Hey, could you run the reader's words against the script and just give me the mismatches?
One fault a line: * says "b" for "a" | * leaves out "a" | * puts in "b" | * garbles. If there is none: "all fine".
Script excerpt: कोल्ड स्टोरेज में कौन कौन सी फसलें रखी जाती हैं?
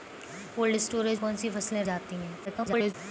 * leaves out "में"
* leaves out "कौन"
* leaves out "रखी"
* garbles